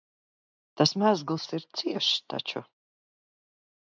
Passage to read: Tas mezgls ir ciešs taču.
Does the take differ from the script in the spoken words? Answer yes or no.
no